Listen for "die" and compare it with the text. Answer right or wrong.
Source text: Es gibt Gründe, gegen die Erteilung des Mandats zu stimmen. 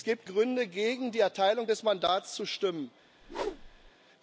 right